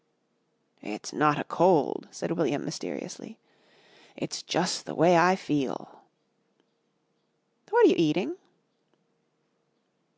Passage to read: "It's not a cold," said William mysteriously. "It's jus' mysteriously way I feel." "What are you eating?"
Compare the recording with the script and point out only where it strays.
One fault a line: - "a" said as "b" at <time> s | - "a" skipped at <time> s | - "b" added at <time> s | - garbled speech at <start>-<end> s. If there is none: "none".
- "mysteriously" said as "the" at 4.8 s